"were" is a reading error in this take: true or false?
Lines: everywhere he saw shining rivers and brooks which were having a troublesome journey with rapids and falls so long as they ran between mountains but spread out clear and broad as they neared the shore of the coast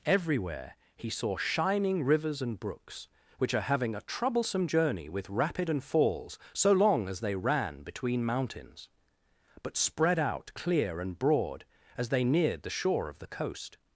true